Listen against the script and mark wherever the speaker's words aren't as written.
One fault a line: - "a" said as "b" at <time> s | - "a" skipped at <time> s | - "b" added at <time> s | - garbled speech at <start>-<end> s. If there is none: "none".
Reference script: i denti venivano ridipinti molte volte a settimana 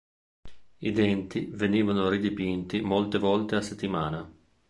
none